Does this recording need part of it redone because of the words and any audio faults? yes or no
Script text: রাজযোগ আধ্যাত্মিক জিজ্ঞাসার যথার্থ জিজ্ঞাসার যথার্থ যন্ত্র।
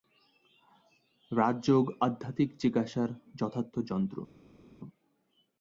yes